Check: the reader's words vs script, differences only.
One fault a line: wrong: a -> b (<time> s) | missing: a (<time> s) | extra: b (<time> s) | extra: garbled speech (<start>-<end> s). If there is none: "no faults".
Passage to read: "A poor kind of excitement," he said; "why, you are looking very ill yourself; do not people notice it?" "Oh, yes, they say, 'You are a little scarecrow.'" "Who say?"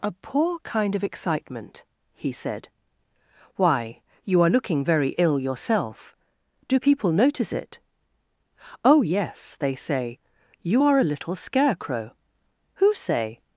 missing: not (6.8 s)